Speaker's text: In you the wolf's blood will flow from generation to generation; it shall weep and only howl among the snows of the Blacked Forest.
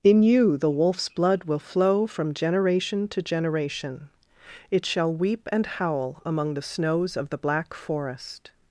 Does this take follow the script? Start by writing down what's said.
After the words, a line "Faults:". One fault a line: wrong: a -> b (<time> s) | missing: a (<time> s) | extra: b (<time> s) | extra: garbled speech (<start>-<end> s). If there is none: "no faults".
In you the wolf's blood will flow from generation to generation; it shall weep and howl among the snows of the Black Forest.
Faults:
missing: only (5.7 s)
wrong: Blacked -> Black (7.4 s)